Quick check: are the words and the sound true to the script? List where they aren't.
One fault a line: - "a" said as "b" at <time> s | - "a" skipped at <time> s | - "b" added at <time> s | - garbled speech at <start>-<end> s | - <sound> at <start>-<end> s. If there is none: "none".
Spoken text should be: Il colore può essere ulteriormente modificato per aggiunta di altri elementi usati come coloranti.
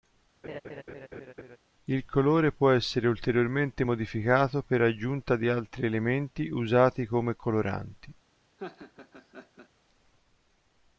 - laugh at 0.4-1.6 s
- laugh at 8.6-9.7 s